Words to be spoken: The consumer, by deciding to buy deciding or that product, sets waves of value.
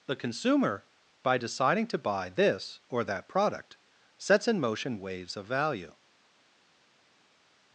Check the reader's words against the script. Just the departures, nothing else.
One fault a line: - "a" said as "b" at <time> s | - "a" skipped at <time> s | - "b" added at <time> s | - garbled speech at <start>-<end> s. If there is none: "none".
- "deciding" said as "this" at 2.3 s
- "in motion" added at 4.5 s